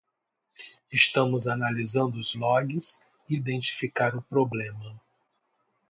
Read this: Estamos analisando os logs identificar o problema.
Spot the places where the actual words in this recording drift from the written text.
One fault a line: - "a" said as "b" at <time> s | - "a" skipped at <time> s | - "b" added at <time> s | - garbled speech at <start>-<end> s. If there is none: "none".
none